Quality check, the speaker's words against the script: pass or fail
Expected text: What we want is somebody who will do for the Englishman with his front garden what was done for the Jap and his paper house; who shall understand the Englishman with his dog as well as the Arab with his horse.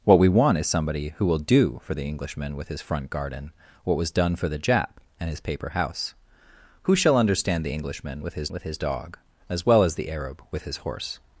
fail